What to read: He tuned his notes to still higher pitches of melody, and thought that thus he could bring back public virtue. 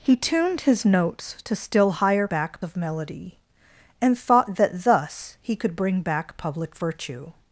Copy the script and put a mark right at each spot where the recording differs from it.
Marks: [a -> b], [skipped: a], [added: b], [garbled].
He tuned his notes to still higher [pitches -> back] of melody, and thought that thus he could bring back public virtue.